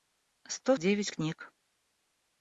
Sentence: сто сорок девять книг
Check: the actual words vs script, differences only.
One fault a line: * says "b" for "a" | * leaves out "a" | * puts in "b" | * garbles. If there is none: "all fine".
* leaves out "сорок"